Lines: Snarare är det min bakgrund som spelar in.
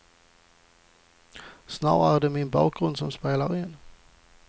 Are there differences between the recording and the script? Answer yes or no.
no